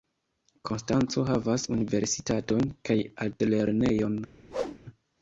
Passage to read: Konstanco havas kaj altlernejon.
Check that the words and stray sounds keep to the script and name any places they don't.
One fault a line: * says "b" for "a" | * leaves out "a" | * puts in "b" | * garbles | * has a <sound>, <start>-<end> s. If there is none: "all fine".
* puts in "universitaton"
* has a whoosh, 4.5-4.8 s